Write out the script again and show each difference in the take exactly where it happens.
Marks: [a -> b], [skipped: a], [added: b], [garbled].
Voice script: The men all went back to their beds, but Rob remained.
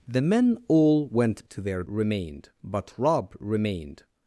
The men all went [skipped: back] to their [beds, -> remained] but Rob remained.